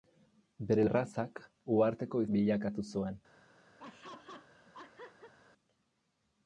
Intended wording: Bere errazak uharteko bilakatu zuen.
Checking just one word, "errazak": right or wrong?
right